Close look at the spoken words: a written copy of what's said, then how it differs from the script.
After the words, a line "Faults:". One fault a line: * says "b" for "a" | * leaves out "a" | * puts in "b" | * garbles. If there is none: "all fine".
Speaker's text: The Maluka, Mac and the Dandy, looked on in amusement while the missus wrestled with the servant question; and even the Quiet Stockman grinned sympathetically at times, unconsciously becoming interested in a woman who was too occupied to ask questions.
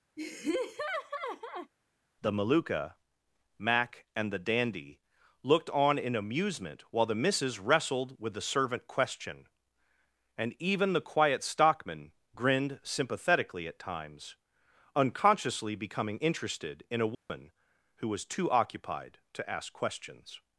The Maluka, Mac and the Dandy, looked on in amusement while the missus wrestled with the servant question; and even the Quiet Stockman grinned sympathetically at times, unconsciously becoming interested in a woman who was too occupied to ask questions.
Faults:
all fine